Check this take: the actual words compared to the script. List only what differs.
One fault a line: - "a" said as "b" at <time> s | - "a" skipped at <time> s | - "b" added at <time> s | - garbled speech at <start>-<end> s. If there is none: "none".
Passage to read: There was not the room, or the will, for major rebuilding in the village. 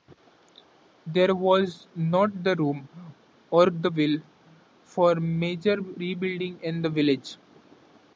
none